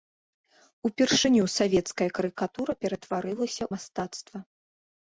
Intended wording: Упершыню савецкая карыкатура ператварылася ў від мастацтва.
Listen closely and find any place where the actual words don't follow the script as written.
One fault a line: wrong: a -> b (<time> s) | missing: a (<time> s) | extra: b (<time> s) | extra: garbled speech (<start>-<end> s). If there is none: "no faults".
missing: ў від (3.6 s)